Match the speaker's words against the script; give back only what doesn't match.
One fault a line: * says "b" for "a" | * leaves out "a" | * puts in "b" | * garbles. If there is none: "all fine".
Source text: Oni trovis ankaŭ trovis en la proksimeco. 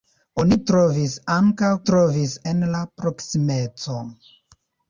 all fine